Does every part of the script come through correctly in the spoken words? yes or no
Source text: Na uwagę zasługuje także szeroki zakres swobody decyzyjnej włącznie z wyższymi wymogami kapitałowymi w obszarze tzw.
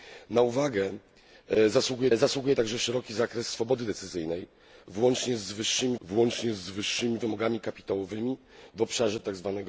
no